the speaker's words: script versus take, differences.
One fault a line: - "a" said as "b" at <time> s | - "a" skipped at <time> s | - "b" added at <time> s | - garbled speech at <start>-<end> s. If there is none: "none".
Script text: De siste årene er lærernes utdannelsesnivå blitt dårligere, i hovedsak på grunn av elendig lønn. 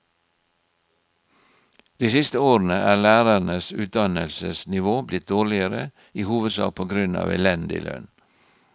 none